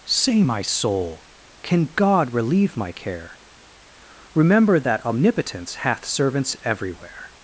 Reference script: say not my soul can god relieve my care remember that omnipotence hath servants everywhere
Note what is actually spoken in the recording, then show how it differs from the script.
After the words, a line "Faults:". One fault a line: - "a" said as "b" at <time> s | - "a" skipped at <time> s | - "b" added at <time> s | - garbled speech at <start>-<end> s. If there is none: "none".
say my soul can god relieve my care remember that omnipotence hath servants everywhere
Faults:
- "not" skipped at 0.4 s